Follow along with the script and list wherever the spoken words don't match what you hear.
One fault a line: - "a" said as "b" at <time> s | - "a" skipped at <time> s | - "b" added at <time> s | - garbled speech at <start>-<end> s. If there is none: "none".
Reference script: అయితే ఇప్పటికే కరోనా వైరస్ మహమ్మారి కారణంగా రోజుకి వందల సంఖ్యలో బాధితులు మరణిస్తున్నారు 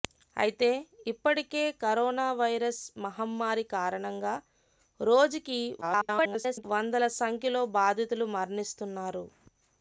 - garbled speech at 5.8-6.6 s